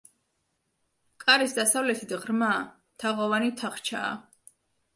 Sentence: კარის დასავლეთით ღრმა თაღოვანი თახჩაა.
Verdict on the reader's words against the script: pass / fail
pass